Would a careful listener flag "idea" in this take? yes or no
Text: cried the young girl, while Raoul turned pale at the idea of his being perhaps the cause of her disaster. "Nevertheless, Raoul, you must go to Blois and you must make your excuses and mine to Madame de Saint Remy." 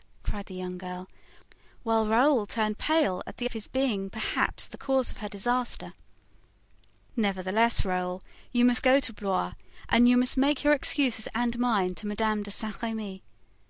yes